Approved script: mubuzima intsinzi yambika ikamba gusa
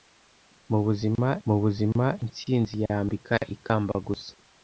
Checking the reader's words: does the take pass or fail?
fail